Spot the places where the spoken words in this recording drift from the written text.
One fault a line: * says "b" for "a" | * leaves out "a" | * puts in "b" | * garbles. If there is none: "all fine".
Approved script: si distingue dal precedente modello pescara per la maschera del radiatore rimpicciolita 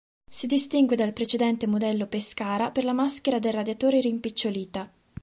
all fine